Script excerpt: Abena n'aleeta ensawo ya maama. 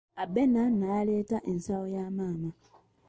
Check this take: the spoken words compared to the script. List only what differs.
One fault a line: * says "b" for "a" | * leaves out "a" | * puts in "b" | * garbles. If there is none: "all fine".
all fine